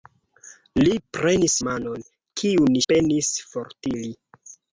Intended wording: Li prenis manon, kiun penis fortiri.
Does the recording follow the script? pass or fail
pass